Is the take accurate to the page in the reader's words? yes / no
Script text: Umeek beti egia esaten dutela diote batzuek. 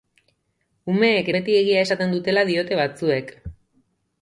yes